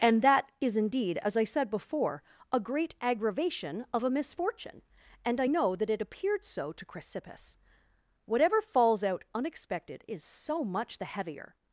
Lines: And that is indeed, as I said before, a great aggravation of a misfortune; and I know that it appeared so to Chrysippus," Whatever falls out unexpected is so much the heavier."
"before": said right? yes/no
yes